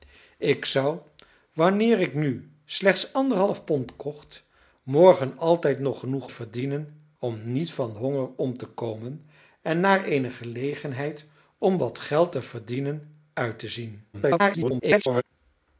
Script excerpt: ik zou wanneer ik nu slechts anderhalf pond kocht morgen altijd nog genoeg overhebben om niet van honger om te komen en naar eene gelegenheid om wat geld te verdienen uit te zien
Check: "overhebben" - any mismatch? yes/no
yes